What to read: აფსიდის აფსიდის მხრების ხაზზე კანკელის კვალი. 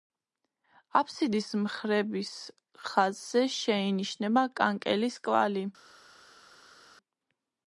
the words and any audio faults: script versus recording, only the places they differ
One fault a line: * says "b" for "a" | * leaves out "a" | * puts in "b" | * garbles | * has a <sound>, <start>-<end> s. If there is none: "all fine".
* leaves out "აფსიდის"
* puts in "შეინიშნება"